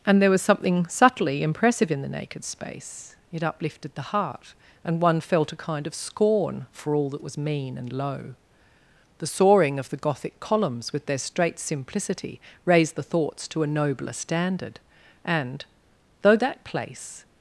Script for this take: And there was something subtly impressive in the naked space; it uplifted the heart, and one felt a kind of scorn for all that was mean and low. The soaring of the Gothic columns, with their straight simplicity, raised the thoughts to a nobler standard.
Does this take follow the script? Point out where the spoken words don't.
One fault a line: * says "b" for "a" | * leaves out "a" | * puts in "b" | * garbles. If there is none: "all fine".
* puts in "And though that place"